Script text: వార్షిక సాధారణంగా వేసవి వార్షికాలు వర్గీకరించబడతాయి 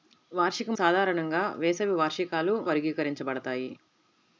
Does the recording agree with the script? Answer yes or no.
yes